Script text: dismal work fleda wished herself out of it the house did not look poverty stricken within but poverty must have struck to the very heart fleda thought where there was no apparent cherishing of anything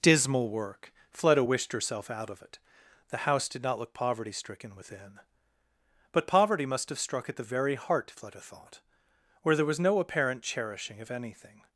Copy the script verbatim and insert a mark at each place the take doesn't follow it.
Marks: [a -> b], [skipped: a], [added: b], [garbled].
dismal work fleda wished herself out of it the house did not look poverty stricken within but poverty must have struck [to -> at] the very heart fleda thought where there was no apparent cherishing of anything